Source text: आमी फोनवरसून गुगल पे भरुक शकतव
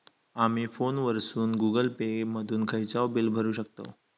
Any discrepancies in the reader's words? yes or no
yes